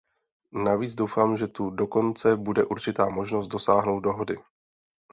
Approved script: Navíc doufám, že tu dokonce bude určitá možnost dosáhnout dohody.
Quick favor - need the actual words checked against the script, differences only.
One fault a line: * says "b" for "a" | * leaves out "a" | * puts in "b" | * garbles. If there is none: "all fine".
all fine